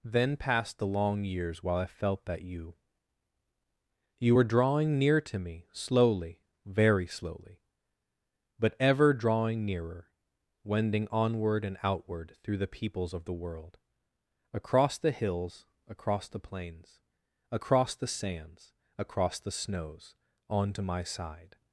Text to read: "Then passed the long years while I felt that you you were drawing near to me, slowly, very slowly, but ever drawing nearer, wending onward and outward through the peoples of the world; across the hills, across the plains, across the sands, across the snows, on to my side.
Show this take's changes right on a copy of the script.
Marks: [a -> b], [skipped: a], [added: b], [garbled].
"Then passed the long years while I felt that you you were drawing near to me, slowly, very slowly, but ever drawing nearer, wending onward and outward through the peoples of the world; across the hills, across the plains, across the sands, across the snows, on to my side.